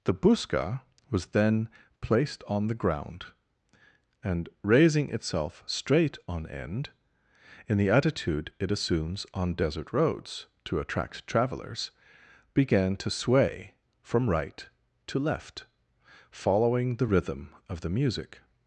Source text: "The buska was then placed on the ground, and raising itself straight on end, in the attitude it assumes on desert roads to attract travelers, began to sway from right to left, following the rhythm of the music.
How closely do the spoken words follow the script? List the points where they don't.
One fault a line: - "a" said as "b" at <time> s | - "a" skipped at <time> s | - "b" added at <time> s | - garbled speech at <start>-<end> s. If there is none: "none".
none